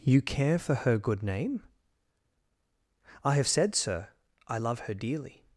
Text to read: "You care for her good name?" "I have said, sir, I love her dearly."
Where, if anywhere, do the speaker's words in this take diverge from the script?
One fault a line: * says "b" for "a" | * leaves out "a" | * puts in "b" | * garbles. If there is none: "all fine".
all fine